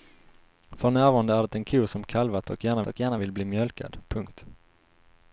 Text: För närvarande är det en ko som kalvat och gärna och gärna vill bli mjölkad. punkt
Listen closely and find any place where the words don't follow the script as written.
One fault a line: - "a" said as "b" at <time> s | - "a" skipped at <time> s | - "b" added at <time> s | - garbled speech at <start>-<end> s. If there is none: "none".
none